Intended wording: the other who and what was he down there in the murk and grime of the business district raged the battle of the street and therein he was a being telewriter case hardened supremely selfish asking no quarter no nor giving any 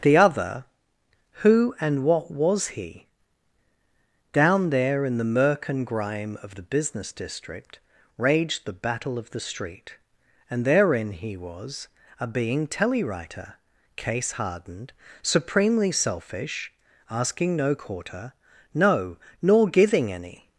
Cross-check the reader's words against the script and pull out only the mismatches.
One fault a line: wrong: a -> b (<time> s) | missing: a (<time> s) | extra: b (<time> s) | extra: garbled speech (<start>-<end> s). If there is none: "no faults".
no faults